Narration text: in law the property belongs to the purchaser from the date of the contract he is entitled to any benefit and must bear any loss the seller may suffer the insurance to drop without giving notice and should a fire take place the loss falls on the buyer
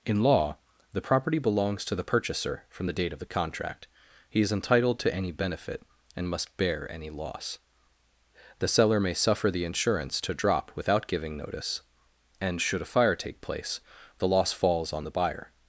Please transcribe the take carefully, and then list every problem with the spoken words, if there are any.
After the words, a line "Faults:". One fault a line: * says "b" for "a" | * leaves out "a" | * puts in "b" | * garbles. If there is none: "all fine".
in law the property belongs to the purchaser from the date of the contract he is entitled to any benefit and must bear any loss the seller may suffer the insurance to drop without giving notice and should a fire take place the loss falls on the buyer
Faults:
all fine